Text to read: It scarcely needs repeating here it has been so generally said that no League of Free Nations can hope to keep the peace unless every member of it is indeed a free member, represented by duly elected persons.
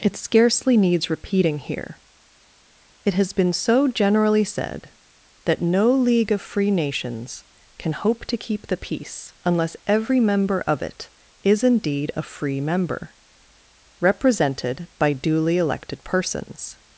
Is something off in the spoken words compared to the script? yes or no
no